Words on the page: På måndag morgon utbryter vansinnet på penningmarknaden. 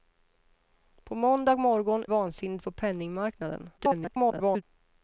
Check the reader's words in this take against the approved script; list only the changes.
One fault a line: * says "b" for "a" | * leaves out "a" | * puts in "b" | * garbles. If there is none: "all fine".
* leaves out "utbryter"
* garbles